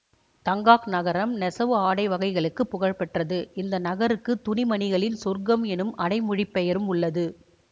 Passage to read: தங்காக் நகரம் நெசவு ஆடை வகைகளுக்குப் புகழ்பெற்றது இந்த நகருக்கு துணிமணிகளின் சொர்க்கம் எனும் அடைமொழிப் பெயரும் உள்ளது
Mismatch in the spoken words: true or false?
false